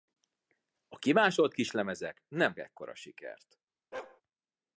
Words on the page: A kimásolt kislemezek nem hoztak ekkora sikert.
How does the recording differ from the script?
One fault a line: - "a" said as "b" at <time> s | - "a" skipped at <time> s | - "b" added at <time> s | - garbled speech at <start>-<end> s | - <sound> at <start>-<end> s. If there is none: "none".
- "hoztak" skipped at 2.6 s
- bark at 3.9-4.2 s